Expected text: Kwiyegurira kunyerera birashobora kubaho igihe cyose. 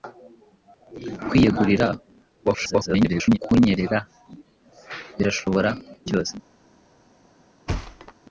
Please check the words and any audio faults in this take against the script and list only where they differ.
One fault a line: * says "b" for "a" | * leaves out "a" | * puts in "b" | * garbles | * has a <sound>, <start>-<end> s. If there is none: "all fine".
* garbles
* leaves out "kubaho igihe"
* has a thud, 7.7-8.1 s